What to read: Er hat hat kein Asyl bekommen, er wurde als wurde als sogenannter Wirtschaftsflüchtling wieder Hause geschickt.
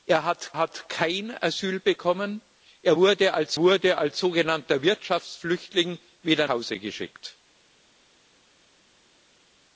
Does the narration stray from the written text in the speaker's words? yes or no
no